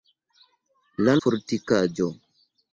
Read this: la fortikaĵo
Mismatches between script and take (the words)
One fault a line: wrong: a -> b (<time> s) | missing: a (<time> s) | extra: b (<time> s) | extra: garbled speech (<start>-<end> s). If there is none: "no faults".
no faults